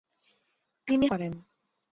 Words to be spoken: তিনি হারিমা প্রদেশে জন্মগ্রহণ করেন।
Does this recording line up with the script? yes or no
no